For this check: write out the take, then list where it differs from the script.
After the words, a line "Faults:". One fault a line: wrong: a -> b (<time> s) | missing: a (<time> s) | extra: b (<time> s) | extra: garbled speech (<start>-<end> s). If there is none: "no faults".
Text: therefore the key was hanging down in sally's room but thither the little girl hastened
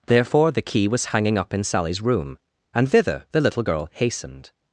therefore the key was hanging up in sally's room and thither the little girl hastened
Faults:
wrong: down -> up (1.4 s)
wrong: but -> and (2.7 s)